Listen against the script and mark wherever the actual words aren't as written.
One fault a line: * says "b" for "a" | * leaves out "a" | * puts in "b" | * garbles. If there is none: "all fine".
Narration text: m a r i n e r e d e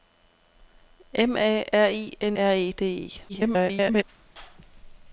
* leaves out "e"
* garbles